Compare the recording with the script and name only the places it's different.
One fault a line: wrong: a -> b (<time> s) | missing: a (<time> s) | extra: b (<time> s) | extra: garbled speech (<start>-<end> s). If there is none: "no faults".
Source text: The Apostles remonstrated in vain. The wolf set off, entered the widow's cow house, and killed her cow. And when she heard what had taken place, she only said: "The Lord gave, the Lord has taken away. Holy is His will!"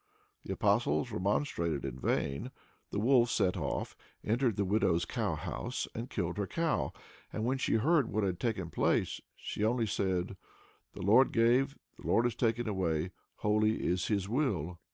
no faults